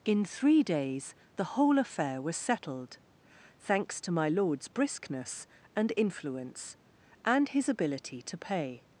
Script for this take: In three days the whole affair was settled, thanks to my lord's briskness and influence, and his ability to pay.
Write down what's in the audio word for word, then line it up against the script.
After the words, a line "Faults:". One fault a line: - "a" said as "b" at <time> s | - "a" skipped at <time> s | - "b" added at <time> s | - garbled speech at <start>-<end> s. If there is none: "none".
In three days the whole affair was settled, thanks to my lord's briskness and influence, and his ability to pay.
Faults:
none